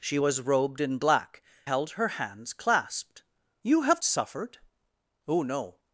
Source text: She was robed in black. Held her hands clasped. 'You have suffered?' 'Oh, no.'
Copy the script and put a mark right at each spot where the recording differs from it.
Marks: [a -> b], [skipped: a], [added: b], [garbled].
She was robed in black. Held her hands clasped. 'You have suffered?' 'Oh, no.'